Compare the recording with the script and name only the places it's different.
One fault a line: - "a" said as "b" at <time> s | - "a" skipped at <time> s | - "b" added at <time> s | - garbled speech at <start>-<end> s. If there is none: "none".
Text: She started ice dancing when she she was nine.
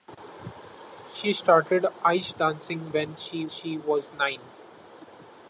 none